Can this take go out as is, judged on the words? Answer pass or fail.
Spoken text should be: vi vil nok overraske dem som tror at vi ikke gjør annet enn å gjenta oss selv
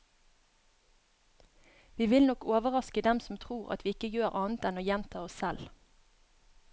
pass